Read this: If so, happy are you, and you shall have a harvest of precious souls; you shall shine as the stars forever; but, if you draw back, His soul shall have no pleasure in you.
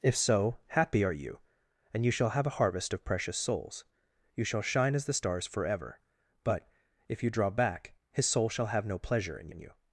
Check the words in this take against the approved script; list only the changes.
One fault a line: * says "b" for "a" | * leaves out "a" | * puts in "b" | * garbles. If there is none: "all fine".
* puts in "in"